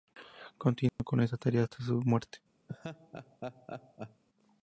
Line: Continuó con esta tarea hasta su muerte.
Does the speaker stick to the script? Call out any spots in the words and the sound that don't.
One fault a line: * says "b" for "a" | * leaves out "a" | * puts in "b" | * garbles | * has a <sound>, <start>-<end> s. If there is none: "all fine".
* has a dropout, 0.9-1.0 s
* has a laugh, 2.7-4.2 s